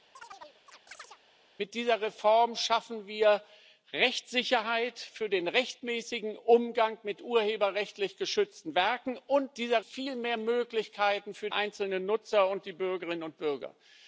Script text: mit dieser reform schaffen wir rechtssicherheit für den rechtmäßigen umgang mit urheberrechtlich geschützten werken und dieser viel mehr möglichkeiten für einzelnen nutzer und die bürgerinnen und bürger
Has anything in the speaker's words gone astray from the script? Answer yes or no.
no